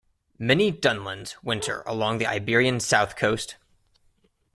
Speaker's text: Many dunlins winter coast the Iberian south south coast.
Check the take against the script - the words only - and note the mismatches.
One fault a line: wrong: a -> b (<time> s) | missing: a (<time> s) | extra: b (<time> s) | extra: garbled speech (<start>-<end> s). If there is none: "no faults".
wrong: coast -> along (1.9 s)
missing: south (3.1 s)